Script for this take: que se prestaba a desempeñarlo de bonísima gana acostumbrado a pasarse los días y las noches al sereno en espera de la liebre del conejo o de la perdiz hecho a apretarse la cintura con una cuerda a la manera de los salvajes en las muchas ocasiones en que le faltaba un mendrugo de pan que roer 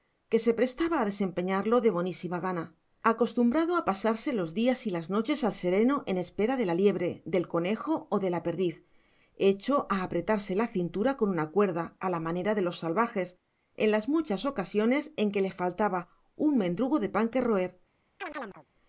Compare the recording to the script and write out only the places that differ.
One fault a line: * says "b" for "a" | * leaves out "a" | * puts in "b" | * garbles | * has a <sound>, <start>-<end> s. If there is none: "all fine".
* has a chirp, 18.2-18.7 s